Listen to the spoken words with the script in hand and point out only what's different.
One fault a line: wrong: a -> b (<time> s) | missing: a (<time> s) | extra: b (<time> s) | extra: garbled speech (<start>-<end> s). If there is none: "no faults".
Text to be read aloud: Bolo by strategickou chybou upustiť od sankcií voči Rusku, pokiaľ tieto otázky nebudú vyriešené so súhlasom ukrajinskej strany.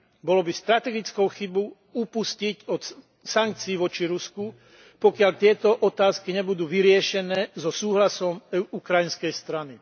no faults